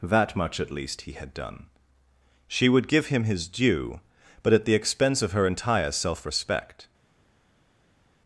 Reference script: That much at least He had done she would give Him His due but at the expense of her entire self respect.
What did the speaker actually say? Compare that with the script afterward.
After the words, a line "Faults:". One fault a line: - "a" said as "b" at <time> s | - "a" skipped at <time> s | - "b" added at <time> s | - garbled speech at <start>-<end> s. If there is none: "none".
That much at least He had done she would give Him His due but at the expense of her entire self respect.
Faults:
none